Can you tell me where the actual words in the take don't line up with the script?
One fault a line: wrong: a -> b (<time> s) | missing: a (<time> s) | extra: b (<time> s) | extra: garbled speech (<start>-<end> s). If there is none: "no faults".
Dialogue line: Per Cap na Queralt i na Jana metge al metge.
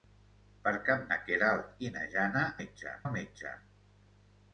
no faults